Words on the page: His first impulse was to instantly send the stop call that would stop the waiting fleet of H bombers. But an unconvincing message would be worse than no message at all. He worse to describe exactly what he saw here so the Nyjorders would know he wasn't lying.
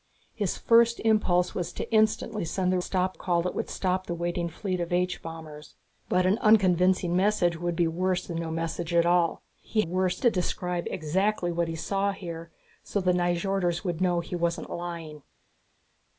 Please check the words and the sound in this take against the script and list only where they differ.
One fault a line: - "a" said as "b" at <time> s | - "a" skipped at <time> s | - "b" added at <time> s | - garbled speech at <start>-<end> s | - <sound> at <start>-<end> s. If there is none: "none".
none